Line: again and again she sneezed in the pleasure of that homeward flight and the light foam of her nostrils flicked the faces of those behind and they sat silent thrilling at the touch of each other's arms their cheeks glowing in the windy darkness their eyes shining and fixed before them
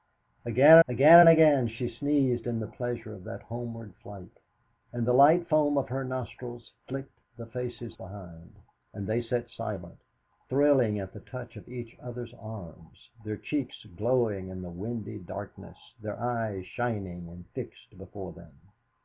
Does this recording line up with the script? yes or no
no